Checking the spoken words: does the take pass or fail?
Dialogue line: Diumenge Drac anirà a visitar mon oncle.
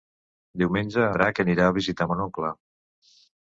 pass